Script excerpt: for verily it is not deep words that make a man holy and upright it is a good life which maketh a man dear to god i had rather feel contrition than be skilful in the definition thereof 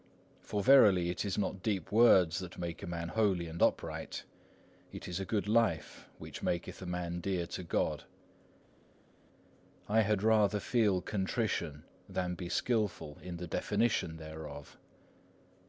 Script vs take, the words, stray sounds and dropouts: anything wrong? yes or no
no